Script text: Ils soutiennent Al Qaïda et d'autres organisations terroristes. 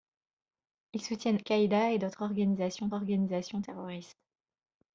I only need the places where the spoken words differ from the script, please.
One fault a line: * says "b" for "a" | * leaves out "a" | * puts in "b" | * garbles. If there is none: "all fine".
* leaves out "Al"
* puts in "organisations"